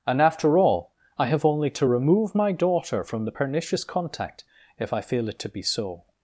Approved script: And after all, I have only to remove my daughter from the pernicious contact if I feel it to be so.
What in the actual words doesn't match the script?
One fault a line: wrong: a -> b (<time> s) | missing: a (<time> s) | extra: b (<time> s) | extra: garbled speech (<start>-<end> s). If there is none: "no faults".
no faults